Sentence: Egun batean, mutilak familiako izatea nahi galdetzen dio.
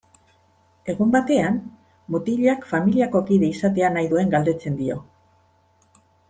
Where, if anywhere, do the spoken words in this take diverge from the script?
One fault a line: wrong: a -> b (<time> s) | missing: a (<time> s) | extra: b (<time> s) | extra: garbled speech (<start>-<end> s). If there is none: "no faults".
extra: kide (3.3 s)
extra: duen (4.1 s)